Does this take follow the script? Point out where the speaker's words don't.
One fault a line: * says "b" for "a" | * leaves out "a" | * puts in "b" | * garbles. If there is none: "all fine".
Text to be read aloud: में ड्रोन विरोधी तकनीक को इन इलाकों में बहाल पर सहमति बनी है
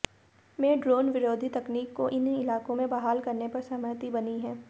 * puts in "करने"